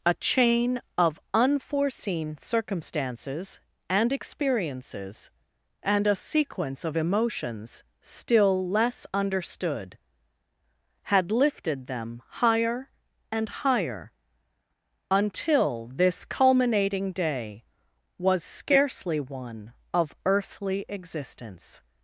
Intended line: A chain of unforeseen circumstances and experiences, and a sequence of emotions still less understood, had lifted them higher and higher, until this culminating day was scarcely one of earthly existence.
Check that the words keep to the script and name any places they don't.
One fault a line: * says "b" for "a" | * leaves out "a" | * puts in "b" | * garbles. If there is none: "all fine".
all fine